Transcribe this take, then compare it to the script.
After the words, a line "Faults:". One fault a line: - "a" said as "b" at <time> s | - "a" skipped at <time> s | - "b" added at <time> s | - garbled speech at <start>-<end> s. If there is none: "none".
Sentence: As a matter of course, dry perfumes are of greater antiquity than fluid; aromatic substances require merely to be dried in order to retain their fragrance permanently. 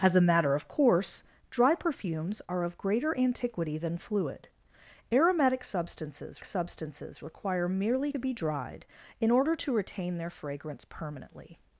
As a matter of course, dry perfumes are of greater antiquity than fluid; aromatic substances substances require merely be dried in order to retain their fragrance permanently.
Faults:
- "substances" added at 6.4 s
- "to" skipped at 8.1 s